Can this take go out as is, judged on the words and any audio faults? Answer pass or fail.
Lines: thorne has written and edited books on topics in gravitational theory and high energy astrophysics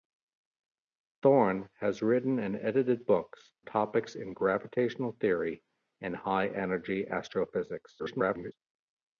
fail